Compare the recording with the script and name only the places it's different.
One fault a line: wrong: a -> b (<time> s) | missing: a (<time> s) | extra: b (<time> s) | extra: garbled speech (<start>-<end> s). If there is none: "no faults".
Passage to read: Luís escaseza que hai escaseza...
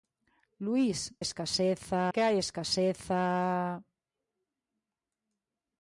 no faults